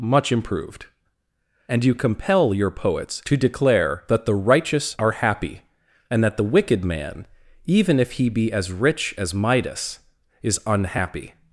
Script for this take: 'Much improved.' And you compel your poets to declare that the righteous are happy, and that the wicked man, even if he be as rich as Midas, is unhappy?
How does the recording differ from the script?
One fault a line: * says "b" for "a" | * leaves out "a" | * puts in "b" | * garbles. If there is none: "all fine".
all fine